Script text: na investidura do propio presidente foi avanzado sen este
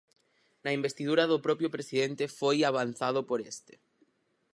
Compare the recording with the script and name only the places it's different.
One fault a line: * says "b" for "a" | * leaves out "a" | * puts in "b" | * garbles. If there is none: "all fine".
* says "por" for "sen"